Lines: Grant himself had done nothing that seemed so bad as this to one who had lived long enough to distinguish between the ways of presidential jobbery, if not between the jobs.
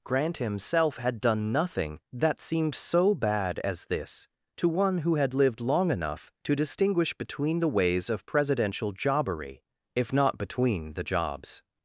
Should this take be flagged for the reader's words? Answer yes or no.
no